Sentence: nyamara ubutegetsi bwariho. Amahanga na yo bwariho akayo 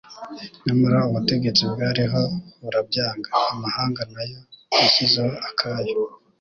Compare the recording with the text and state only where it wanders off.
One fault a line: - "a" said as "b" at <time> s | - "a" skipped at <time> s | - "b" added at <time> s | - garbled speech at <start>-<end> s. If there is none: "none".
- "burabyanga" added at 2.6 s
- "bwariho" said as "yashyizeho" at 4.8 s